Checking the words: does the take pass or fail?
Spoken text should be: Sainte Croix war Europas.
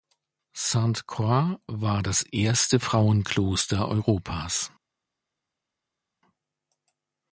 fail